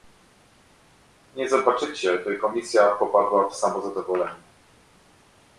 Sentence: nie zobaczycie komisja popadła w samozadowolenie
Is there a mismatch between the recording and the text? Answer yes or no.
yes